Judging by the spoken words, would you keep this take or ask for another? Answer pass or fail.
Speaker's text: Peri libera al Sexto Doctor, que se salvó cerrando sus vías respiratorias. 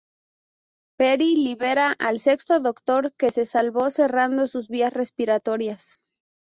pass